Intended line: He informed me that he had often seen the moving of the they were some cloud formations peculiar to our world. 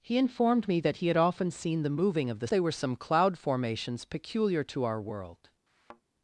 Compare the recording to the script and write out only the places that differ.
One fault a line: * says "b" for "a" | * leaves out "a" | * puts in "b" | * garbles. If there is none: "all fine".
all fine